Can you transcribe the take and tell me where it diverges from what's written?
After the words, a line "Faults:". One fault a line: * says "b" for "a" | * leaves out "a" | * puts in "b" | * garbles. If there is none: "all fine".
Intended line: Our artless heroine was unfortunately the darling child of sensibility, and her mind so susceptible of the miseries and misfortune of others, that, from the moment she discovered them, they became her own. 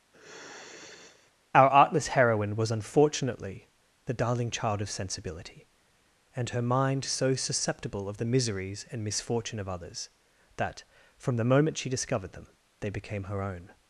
Our artless heroine was unfortunately the darling child of sensibility, and her mind so susceptible of the miseries and misfortune of others, that, from the moment she discovered them, they became her own.
Faults:
all fine